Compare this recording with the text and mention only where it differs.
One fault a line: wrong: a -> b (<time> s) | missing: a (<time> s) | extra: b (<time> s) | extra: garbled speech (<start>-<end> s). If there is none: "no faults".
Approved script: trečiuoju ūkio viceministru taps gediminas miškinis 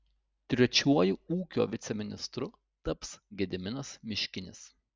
no faults